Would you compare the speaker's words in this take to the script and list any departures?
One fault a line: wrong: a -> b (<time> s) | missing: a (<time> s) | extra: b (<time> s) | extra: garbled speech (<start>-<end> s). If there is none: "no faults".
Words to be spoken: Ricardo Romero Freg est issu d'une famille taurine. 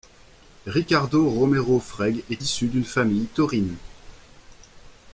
no faults